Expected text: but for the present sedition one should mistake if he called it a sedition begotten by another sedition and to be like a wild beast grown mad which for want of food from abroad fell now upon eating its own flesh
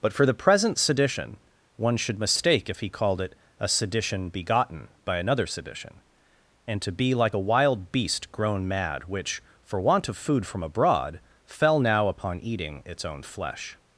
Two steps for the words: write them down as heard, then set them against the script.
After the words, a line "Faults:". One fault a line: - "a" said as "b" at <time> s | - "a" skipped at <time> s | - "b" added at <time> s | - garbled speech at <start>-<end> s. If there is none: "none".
but for the present sedition one should mistake if he called it a sedition begotten by another sedition and to be like a wild beast grown mad which for want of food from abroad fell now upon eating its own flesh
Faults:
none